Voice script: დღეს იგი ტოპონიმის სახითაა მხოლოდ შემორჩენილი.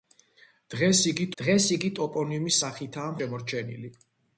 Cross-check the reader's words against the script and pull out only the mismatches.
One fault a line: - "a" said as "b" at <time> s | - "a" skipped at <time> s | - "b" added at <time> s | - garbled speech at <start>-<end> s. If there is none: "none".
- "დღეს იგი" added at 1.4 s
- "მხოლოდ" skipped at 3.2 s